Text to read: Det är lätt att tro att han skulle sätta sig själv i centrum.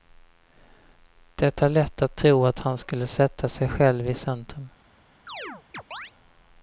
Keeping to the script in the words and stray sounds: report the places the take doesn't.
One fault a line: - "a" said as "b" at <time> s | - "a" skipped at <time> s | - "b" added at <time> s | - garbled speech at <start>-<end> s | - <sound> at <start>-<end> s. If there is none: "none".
- chirp at 5.3-6.1 s